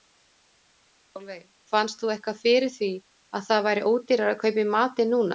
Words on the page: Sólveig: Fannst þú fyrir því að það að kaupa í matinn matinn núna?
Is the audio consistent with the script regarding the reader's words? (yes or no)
no